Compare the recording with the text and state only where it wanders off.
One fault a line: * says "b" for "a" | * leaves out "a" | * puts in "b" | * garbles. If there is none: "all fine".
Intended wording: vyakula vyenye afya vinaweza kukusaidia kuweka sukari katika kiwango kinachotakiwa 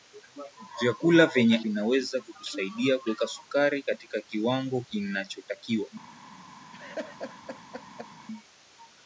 * leaves out "afya"